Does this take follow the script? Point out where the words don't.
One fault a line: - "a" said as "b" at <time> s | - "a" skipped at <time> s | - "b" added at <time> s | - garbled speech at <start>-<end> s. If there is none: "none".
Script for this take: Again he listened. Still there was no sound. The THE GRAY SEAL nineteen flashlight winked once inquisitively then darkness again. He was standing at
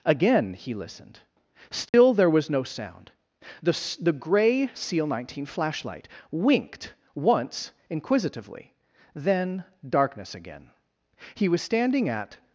none